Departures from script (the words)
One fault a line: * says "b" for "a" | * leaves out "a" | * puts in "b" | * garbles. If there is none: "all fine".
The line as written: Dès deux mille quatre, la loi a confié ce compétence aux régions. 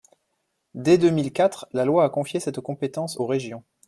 * says "cette" for "ce"